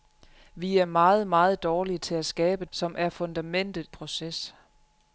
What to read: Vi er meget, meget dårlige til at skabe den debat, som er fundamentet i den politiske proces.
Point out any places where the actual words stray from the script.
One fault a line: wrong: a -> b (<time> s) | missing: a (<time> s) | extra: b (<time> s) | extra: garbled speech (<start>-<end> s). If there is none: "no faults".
missing: den debat (2.7 s)
missing: i den politiske (3.9 s)